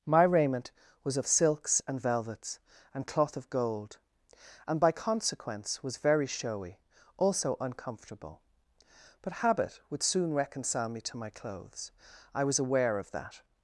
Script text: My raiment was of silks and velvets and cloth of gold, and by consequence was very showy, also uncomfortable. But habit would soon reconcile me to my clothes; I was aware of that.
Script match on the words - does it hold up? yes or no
yes